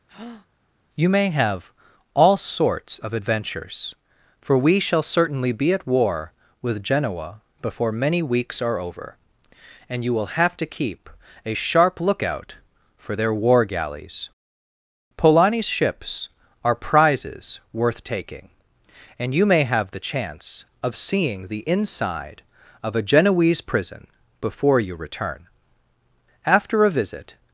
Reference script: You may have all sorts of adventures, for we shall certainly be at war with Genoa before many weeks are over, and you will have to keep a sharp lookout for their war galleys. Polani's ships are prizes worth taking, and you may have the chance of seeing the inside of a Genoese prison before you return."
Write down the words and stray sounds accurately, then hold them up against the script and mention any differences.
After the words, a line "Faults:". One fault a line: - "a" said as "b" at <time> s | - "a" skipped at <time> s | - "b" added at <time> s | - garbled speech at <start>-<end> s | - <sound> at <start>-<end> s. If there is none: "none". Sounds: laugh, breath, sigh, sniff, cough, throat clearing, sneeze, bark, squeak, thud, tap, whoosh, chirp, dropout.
You may have all sorts of adventures, for we shall certainly be at war with Genoa before many weeks are over, and you will have to keep a sharp lookout for their war galleys. Polani's ships are prizes worth taking, and you may have the chance of seeing the inside of a Genoese prison before you return." After a visit
Faults:
- breath at 0.1-0.5 s
- "After a visit" added at 26.5 s